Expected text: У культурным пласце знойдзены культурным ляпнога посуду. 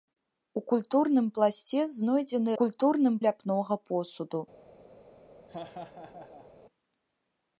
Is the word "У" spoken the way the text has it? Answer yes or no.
yes